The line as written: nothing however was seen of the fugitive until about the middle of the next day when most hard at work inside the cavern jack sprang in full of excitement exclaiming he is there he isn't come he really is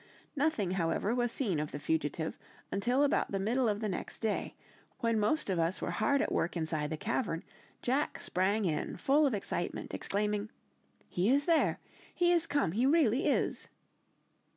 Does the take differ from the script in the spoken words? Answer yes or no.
yes